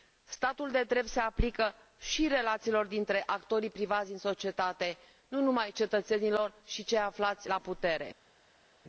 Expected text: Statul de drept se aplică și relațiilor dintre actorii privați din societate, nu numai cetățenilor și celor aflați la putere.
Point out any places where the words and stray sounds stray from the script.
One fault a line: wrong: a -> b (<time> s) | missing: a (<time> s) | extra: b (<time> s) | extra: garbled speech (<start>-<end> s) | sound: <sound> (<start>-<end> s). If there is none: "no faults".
no faults